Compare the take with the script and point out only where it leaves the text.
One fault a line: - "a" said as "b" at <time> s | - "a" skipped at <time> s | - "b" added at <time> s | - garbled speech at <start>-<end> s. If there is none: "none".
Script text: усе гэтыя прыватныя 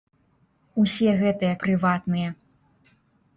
none